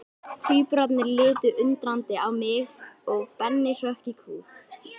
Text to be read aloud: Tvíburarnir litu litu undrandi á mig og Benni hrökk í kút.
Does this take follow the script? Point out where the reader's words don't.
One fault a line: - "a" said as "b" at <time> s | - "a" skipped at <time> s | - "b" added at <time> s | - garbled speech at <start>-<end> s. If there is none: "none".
- "litu" skipped at 1.5 s